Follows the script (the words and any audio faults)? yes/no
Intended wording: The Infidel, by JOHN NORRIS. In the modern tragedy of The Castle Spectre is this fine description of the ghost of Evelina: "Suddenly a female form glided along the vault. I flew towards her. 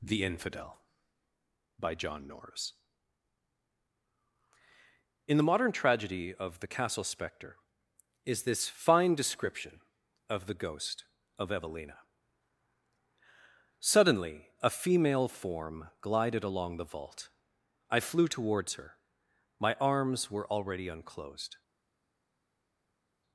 no